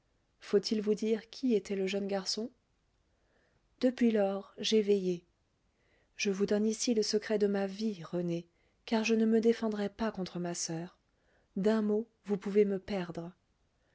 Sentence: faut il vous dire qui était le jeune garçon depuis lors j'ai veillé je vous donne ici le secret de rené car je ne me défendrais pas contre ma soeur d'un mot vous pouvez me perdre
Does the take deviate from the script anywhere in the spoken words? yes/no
yes